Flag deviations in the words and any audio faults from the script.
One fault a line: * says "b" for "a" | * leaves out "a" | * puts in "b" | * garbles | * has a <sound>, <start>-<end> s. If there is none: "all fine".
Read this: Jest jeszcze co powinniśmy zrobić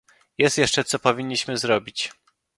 all fine